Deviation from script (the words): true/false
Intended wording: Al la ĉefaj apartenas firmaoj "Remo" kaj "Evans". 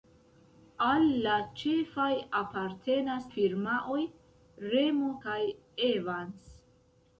false